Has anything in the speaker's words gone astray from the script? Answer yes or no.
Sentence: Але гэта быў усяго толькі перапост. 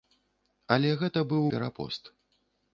yes